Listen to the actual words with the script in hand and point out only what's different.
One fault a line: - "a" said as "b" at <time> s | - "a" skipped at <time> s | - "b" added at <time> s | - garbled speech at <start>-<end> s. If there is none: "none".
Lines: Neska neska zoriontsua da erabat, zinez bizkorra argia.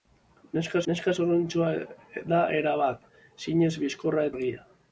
none